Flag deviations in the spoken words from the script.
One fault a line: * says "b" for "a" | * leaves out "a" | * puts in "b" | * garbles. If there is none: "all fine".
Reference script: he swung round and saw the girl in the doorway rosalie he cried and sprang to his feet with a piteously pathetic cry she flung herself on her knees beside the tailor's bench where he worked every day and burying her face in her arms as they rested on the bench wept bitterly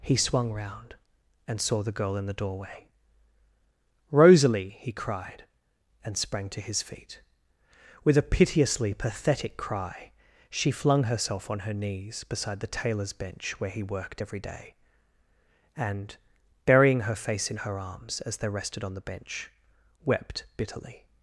all fine